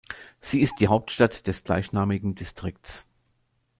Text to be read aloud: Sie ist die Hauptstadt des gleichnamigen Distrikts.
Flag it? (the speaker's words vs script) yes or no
no